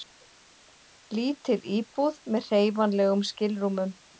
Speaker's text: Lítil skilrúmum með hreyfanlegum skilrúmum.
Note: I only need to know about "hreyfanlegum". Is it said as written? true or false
true